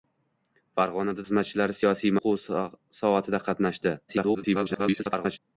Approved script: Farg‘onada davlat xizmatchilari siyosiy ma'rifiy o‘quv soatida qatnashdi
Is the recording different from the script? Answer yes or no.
yes